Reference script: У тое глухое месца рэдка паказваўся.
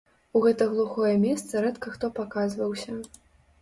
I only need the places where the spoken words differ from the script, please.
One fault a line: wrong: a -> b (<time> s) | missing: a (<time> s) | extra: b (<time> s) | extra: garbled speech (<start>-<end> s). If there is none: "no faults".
wrong: тое -> гэта (0.4 s)
extra: хто (2.0 s)